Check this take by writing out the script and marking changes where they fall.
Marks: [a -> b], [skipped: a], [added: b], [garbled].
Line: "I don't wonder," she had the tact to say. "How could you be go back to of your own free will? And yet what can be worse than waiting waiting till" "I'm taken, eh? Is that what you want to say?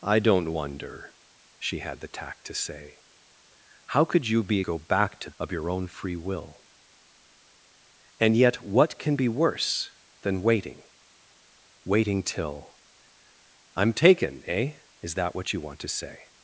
"I don't wonder," she had the tact to say. "How could you be go back to of your own free will? And yet what can be worse than waiting waiting till" "I'm taken, eh? Is that what you want to say?